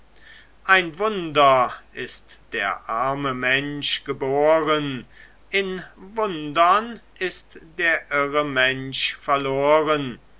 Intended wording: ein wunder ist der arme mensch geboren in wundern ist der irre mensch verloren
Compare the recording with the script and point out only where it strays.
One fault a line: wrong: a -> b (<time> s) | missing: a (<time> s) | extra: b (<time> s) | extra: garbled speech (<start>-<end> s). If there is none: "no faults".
no faults